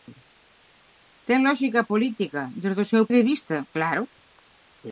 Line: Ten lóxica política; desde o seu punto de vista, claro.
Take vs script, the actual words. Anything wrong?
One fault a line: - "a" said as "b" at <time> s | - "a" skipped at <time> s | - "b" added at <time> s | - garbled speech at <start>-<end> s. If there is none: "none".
- "punto" skipped at 3.0 s